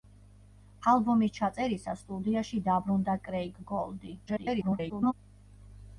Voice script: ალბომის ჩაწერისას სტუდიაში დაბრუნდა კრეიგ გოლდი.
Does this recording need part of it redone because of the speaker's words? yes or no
yes